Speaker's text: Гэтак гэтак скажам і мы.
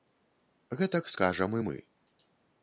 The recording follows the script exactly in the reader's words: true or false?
false